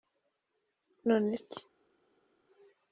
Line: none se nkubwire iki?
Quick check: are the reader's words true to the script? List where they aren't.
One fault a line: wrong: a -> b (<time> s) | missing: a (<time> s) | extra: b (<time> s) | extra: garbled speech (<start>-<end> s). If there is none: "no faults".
missing: se nkubwire (1.3 s)